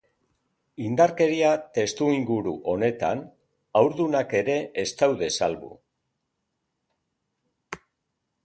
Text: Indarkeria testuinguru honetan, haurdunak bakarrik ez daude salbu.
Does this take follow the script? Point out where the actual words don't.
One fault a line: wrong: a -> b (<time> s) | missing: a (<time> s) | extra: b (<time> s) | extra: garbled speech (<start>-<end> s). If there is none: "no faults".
wrong: bakarrik -> ere (4.4 s)